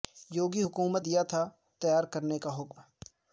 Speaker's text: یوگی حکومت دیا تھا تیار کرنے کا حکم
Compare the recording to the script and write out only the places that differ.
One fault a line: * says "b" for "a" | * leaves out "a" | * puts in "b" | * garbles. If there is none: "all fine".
all fine